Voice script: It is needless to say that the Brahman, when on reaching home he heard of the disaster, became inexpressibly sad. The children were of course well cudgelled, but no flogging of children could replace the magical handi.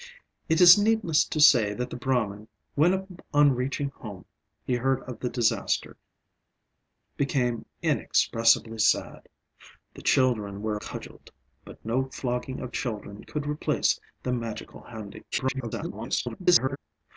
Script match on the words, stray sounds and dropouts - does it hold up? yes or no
no